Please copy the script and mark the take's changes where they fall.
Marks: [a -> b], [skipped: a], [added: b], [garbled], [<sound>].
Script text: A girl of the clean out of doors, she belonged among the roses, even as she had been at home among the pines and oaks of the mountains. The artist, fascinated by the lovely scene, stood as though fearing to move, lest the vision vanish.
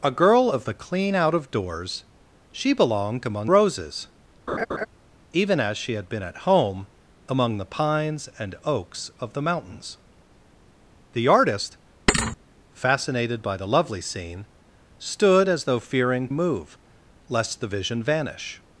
A girl of the clean out of doors, she belonged among [skipped: the] roses, [laugh] even as she had been at home among the pines and oaks of the mountains. The artist, [thud] fascinated by the lovely scene, stood as though fearing [skipped: to] move, lest the vision vanish.